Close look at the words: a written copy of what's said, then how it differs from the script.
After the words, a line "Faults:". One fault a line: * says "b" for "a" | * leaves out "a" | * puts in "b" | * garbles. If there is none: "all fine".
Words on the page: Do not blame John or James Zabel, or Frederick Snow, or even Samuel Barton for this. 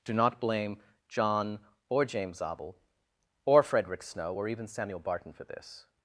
Do not blame John or James Zabel, or Frederick Snow, or even Samuel Barton for this.
Faults:
all fine